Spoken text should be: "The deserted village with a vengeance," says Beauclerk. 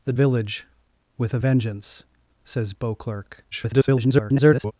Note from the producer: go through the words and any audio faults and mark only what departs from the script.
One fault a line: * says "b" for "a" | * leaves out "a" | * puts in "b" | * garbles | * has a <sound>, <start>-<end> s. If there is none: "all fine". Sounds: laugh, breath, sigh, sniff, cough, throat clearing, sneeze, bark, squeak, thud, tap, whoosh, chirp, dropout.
* leaves out "deserted"
* garbles